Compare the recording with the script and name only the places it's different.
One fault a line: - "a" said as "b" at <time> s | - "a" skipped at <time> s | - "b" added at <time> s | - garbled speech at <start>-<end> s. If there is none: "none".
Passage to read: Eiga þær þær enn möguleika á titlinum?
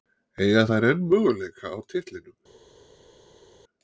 - "þær" skipped at 0.9 s